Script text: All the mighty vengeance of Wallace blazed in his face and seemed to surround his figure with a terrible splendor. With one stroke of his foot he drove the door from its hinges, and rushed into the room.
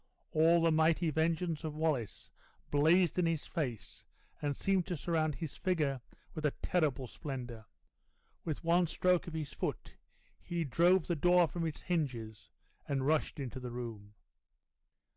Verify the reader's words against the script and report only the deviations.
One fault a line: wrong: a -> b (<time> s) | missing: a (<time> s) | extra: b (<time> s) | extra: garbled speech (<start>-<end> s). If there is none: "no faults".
no faults